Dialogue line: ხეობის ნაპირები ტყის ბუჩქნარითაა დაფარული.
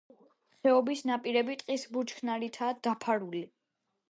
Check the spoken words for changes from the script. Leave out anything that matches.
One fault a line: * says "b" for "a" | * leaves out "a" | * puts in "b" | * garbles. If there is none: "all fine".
all fine